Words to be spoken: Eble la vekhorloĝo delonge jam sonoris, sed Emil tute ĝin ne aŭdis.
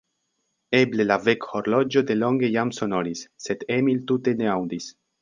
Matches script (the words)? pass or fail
fail